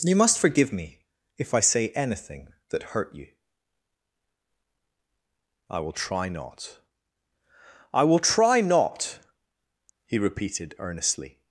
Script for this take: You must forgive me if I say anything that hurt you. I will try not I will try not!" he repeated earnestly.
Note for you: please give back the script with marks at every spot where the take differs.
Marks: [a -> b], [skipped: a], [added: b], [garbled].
You must forgive me if I say anything that hurt you. I will try not I will try not!" he repeated earnestly.